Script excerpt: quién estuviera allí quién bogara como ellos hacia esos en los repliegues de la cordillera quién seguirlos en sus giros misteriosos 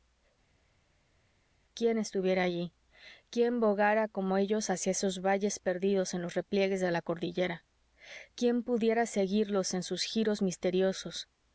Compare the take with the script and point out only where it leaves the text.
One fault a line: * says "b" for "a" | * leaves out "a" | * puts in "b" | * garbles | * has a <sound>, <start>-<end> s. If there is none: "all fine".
* puts in "valles perdidos"
* puts in "pudiera"